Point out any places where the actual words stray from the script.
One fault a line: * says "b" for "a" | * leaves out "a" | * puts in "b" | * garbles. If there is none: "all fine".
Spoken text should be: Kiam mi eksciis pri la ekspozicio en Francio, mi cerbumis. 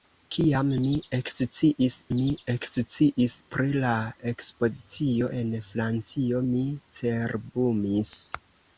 * puts in "mi eksciis"